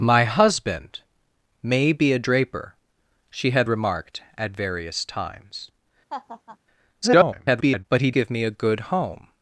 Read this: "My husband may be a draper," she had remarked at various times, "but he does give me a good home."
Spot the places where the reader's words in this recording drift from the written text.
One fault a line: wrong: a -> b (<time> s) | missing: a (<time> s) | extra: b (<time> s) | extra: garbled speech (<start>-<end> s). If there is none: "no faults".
extra: garbled speech (7.0-7.9 s)
missing: does (8.1 s)